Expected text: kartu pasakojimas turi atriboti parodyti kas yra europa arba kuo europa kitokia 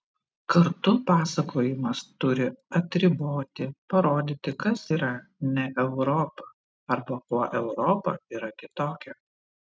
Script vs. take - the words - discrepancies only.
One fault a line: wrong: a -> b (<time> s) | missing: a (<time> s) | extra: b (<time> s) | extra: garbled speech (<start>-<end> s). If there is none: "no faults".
extra: ne (5.5 s)
extra: yra (8.4 s)